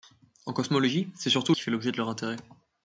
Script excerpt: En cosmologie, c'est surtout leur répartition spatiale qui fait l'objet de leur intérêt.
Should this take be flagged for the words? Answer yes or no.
yes